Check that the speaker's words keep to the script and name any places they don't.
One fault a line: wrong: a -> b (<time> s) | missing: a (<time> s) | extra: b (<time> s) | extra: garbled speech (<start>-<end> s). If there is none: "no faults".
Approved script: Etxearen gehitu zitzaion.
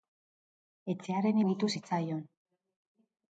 no faults